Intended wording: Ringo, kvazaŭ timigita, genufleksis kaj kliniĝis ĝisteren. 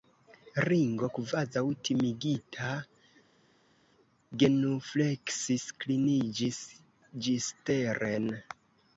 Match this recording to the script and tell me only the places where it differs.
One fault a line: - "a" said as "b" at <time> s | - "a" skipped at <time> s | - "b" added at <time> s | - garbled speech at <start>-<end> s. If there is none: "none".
- "kaj" skipped at 5.7 s